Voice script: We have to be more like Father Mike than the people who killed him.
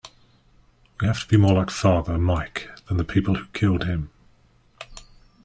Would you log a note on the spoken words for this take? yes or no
no